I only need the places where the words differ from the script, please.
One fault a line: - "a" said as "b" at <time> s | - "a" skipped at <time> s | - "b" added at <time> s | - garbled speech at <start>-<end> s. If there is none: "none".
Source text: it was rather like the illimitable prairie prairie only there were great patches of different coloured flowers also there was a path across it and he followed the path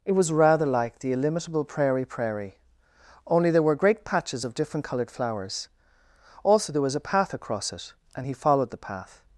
none